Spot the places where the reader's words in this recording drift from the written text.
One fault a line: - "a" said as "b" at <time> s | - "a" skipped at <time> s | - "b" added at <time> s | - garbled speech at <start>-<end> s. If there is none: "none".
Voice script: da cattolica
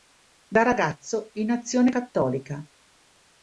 - "ragazzo in azione" added at 0.6 s